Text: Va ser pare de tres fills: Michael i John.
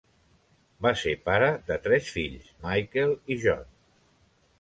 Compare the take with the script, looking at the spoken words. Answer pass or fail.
pass